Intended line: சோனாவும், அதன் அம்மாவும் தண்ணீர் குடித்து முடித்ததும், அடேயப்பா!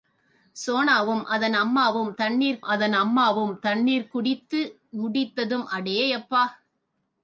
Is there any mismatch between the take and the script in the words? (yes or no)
yes